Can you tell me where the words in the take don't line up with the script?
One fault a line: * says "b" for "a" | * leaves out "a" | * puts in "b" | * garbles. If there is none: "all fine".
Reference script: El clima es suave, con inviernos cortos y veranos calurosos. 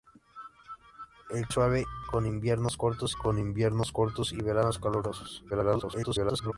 * leaves out "clima"
* puts in "con inviernos cortos"
* garbles